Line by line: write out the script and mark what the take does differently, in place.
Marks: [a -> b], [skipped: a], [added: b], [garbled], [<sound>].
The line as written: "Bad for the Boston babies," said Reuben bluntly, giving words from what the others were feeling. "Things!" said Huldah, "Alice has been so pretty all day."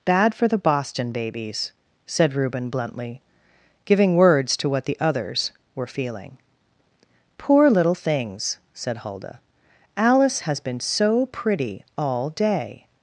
"Bad for the Boston babies," said Reuben bluntly, giving words [from -> to] what the others were feeling. [added: Poor little] "Things!" said Huldah, "Alice has been so pretty all day."